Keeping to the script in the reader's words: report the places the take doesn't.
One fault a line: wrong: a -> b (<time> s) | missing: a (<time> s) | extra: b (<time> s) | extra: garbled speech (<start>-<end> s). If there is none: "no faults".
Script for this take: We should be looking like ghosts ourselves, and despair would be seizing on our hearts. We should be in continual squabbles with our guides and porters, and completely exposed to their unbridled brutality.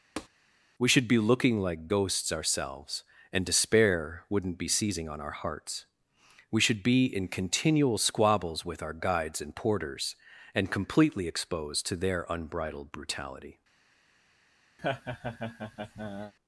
wrong: would -> wouldn't (4.3 s)